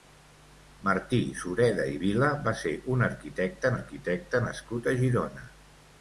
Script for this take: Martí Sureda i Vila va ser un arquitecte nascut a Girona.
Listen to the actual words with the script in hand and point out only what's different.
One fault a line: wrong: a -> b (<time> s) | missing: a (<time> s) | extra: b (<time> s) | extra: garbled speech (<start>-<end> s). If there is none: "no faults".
extra: arquitecte (3.7 s)